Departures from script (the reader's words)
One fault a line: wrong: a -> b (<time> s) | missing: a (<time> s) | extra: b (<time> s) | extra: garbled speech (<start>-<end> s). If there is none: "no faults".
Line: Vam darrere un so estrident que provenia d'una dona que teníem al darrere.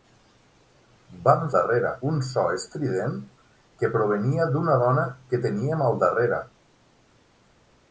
no faults